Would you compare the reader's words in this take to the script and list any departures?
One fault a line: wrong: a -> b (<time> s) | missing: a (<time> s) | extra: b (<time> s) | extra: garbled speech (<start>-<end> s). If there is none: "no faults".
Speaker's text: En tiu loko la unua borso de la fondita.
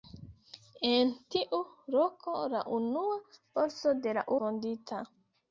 no faults